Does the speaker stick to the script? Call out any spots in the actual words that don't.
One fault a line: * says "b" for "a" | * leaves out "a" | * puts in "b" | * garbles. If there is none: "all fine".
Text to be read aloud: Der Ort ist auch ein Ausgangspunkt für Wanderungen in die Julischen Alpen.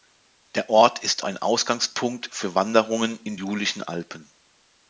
* leaves out "auch"
* leaves out "die"